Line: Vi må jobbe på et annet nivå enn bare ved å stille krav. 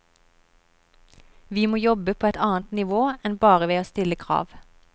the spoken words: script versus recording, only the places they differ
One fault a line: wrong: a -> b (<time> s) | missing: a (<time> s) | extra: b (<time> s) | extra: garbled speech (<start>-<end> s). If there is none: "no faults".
no faults